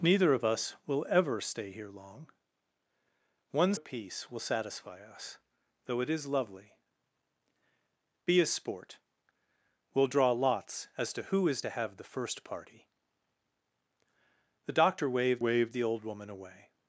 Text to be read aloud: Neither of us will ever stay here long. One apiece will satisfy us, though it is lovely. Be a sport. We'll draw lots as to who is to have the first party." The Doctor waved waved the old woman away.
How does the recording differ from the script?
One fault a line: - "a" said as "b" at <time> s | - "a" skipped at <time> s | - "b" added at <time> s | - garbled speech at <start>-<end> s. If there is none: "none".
none